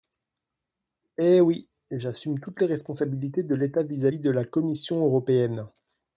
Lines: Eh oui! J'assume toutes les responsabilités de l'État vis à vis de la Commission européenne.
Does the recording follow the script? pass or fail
pass